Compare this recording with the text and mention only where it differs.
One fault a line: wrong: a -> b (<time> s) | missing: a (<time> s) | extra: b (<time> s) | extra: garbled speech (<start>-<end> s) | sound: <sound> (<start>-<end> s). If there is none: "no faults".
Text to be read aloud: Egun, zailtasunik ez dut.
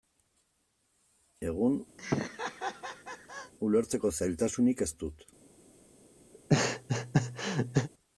sound: laugh (2.0-3.5 s)
extra: ulertzeko (3.7 s)
sound: laugh (6.3-7.9 s)